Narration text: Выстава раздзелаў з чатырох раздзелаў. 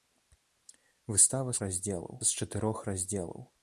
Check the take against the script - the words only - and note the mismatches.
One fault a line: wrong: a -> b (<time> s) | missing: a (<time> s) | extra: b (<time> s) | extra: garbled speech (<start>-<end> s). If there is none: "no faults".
no faults